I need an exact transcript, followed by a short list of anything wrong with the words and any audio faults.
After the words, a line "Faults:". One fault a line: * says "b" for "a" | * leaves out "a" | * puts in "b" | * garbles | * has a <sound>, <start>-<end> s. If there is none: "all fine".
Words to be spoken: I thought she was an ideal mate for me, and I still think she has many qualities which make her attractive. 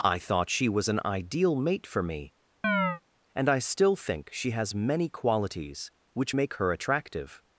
I thought she was an ideal mate for me, and I still think she has many qualities which make her attractive.
Faults:
* has a chirp, 2.6-3.0 s